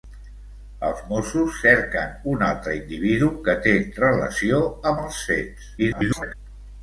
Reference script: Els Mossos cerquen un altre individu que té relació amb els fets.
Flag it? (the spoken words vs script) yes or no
yes